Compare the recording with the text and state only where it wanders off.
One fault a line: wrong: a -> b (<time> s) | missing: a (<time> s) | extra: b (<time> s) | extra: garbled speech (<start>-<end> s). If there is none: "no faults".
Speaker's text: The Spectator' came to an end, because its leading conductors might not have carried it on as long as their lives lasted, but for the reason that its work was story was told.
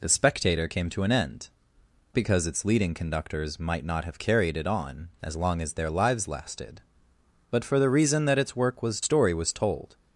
no faults